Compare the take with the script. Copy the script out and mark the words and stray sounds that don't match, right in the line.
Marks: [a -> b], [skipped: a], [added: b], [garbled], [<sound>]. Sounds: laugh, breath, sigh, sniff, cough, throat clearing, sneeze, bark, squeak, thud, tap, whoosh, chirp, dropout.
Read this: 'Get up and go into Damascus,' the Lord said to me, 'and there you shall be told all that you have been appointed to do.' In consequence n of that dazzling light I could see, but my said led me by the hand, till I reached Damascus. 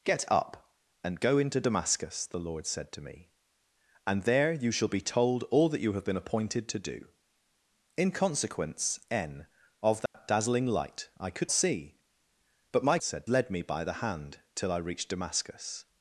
'Get up and go into Damascus,' the Lord said to me, 'and there you shall be told all that you have been appointed to do.' In consequence n of that [dropout] dazzling light I could see, but my said led me by the hand, till I reached Damascus.